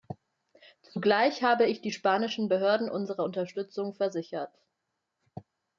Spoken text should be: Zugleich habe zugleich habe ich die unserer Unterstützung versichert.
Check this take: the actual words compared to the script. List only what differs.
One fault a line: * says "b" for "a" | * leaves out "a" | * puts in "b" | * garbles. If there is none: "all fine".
* says "ich die spanischen Behörden" for "zugleich habe ich die"